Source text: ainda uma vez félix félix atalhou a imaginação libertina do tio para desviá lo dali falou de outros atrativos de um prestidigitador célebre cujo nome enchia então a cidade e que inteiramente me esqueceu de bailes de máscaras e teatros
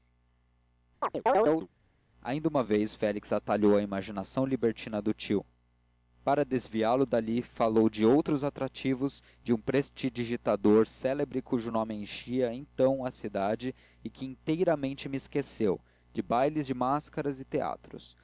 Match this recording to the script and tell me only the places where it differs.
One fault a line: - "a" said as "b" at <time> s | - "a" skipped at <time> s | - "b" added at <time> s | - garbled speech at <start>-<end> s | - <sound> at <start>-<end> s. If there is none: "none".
- chirp at 1.0-1.7 s
- "félix" skipped at 3.3 s